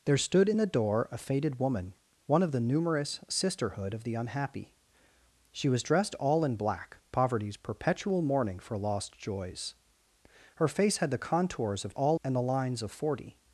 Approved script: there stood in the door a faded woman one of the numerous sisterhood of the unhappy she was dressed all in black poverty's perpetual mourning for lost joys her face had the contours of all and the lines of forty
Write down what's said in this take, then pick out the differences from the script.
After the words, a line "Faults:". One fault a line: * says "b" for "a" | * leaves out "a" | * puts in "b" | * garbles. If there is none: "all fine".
there stood in the door a faded woman one of the numerous sisterhood of the unhappy she was dressed all in black poverty's perpetual mourning for lost joys her face had the contours of all and the lines of forty
Faults:
all fine